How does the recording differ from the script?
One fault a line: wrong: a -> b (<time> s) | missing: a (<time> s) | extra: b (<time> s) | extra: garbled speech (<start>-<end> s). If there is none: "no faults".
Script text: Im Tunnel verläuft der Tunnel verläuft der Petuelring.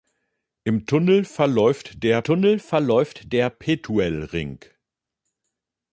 no faults